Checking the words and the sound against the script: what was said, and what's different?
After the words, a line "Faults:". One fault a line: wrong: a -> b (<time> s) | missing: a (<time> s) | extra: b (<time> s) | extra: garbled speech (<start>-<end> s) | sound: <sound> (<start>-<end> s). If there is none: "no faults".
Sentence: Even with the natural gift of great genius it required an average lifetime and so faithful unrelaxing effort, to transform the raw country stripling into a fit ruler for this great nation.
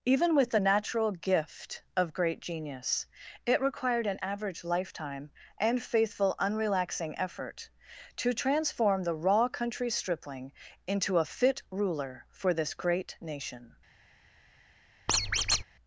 Even with the natural gift of great genius it required an average lifetime and faithful unrelaxing effort, to transform the raw country stripling into a fit ruler for this great nation.
Faults:
missing: so (5.8 s)
sound: squeak (15.1-15.6 s)